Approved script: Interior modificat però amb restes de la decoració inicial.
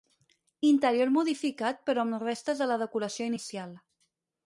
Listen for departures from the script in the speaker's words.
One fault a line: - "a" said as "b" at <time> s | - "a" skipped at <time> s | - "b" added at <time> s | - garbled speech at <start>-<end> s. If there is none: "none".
none